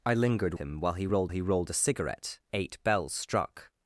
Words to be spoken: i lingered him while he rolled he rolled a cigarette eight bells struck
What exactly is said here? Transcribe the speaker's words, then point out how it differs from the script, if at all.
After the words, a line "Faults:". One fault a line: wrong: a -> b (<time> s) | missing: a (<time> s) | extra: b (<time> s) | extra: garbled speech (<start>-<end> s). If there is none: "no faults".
i lingered him while he rolled he rolled a cigarette eight bells struck
Faults:
no faults